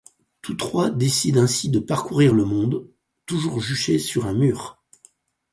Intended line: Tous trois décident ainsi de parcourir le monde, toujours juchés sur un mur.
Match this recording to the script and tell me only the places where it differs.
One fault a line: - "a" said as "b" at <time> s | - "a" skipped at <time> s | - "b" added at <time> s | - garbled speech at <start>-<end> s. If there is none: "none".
none